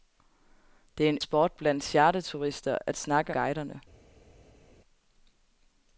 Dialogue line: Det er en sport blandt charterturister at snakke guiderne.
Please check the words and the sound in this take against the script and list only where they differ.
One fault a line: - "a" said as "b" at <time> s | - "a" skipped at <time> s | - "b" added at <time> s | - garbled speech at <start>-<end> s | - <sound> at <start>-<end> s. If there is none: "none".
none